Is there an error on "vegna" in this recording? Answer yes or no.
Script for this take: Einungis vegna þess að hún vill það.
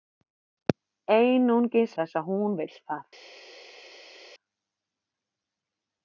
yes